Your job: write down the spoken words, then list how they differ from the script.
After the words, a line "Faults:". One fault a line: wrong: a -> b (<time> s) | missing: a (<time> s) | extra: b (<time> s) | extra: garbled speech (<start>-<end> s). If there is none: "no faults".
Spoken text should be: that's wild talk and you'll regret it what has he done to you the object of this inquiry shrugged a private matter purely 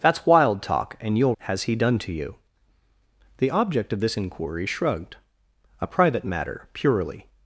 that's wild talk and you'll has he done to you the object of this inquiry shrugged a private matter purely
Faults:
missing: regret it what (1.4 s)